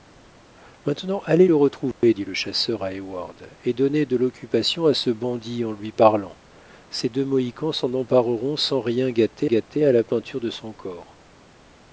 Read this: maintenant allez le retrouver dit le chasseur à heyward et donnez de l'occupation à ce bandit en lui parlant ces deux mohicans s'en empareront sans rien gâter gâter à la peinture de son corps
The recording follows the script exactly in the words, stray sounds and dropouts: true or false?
false